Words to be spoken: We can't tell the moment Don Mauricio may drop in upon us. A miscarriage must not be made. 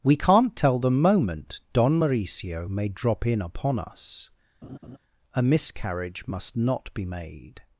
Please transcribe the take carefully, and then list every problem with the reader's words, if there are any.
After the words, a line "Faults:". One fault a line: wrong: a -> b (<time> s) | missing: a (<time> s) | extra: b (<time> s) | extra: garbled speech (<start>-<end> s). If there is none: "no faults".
We can't tell the moment Don Mauricio may drop in upon us. A miscarriage must not be made.
Faults:
no faults